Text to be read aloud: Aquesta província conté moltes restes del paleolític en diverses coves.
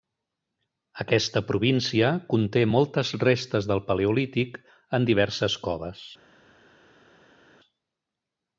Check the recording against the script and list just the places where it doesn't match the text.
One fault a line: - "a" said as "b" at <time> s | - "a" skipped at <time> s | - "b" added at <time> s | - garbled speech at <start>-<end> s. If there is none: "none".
none